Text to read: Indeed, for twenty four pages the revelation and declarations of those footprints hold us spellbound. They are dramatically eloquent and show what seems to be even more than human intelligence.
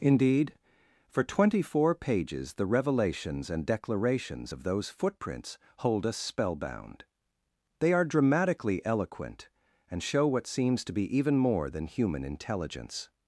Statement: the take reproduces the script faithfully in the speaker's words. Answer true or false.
false